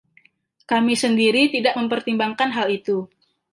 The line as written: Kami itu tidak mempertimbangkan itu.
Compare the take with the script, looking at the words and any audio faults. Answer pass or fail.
fail